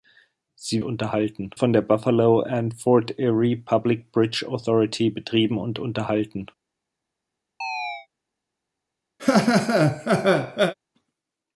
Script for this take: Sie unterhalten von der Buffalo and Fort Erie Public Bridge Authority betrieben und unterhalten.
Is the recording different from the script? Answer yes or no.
no